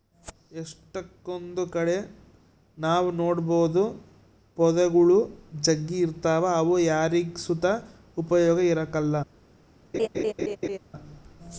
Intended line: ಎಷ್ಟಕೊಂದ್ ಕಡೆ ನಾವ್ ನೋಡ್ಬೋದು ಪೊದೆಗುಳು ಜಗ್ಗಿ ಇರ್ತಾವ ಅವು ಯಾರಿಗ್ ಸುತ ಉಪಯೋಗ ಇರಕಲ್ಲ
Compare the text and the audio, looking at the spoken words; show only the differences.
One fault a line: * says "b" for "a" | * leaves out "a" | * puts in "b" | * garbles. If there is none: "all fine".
all fine